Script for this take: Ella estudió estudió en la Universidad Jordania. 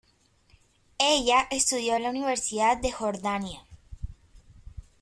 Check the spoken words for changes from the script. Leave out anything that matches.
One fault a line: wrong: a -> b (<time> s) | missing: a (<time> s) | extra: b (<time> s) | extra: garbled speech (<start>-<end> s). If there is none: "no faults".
missing: estudió (1.9 s)
extra: de (2.8 s)